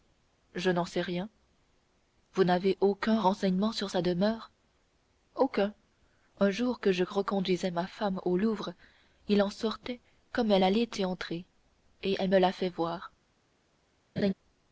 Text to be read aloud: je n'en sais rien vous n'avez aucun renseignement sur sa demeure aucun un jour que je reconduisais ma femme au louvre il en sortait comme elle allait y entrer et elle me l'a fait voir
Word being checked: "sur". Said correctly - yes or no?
yes